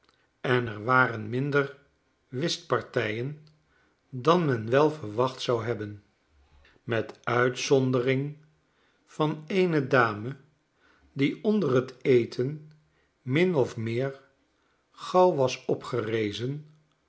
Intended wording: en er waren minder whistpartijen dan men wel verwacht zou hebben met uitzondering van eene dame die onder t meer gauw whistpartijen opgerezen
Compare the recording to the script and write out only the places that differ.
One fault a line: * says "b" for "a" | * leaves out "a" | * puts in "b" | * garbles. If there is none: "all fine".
* puts in "eten min of"
* says "was" for "whistpartijen"